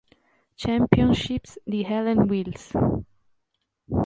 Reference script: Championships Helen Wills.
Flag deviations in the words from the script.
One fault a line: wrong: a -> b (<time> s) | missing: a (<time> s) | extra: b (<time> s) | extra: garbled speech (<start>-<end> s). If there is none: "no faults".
extra: di (1.6 s)